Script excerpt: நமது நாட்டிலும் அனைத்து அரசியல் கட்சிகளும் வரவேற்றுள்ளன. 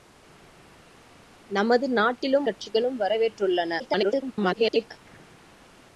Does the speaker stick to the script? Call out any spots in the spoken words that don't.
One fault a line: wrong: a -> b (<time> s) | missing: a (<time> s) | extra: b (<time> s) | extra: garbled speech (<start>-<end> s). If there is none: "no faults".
missing: அனைத்து அரசியல் (2.5 s)
extra: garbled speech (3.8-4.9 s)